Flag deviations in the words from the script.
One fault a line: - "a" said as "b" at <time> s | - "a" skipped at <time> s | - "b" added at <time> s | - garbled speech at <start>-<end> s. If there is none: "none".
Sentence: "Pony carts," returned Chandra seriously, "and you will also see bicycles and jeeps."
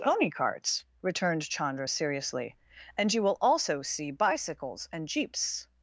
none